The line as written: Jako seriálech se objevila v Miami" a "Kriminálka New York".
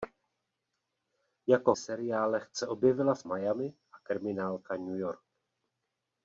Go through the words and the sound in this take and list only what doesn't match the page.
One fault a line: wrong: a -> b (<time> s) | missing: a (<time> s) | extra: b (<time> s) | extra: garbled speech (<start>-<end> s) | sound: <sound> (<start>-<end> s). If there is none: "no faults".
no faults